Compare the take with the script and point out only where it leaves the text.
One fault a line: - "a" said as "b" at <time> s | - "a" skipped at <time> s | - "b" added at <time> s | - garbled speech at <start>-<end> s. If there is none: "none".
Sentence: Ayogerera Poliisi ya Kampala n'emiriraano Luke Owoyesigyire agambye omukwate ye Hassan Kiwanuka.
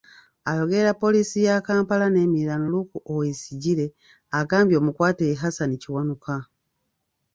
none